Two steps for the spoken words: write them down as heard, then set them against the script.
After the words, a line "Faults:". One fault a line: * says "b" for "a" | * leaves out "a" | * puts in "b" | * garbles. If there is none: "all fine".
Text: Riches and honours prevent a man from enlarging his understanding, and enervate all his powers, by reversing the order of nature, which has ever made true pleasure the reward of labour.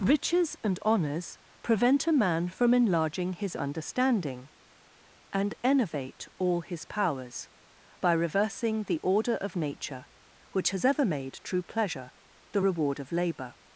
Riches and honours prevent a man from enlarging his understanding, and enervate all his powers, by reversing the order of nature, which has ever made true pleasure the reward of labour.
Faults:
all fine